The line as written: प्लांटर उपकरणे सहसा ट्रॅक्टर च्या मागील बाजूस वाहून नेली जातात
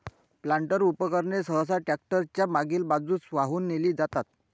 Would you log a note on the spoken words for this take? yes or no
no